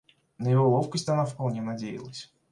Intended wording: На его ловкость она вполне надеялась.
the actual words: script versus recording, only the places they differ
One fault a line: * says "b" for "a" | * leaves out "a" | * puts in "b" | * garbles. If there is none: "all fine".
all fine